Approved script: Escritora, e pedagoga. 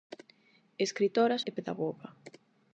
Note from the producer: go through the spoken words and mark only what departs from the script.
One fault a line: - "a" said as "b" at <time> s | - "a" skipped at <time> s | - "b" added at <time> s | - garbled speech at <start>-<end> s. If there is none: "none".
none